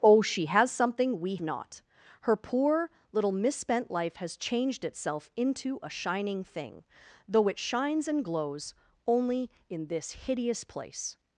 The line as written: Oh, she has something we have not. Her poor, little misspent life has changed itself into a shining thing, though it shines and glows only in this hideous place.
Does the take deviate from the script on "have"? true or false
true